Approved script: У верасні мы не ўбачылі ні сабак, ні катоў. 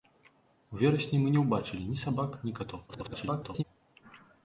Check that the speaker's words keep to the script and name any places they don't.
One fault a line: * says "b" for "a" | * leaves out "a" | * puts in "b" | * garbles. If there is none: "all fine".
* garbles